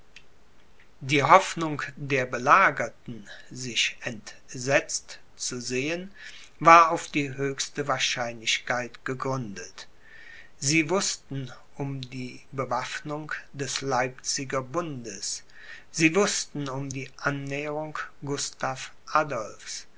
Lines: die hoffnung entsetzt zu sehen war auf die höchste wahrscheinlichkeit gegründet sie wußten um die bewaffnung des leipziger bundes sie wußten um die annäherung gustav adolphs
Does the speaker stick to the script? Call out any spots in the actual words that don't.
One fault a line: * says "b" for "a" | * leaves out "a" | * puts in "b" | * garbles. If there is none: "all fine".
* puts in "der belagerten sich"